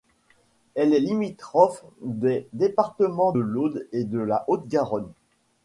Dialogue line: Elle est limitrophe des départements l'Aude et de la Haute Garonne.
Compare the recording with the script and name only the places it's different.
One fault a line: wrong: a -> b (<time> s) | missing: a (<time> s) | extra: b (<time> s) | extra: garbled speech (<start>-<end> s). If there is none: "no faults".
no faults